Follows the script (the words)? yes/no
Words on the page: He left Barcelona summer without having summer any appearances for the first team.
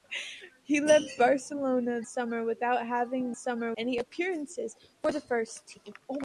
yes